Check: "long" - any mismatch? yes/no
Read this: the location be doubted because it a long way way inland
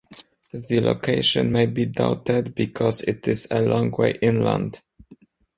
no